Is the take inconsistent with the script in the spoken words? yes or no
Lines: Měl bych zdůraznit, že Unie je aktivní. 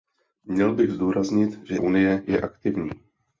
no